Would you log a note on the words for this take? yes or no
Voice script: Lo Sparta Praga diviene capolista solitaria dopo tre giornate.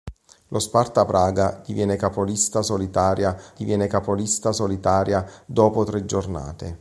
yes